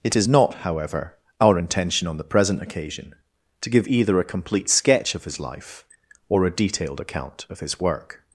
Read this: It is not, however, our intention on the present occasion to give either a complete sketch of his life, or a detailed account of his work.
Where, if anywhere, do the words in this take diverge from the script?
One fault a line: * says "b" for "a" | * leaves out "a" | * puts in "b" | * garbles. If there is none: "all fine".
all fine